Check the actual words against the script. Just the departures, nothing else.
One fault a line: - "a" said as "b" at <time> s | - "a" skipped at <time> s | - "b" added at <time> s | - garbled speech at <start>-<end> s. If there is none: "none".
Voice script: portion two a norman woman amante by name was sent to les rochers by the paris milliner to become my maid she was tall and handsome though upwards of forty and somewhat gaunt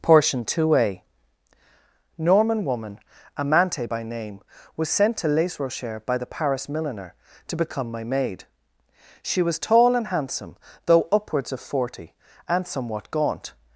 none